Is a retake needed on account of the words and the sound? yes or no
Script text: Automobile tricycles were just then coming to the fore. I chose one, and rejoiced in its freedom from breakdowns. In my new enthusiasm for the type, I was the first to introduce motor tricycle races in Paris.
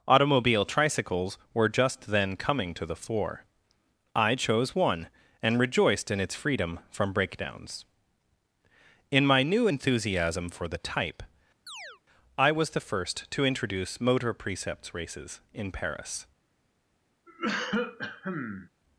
yes